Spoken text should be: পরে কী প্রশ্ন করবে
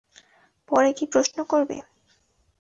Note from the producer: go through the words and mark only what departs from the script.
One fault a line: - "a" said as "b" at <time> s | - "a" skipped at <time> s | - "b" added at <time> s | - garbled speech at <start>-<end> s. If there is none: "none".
none